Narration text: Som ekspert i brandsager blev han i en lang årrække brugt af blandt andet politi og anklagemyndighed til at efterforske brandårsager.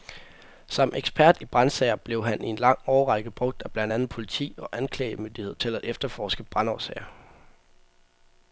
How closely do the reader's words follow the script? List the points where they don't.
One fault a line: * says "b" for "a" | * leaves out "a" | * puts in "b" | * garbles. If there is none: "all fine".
all fine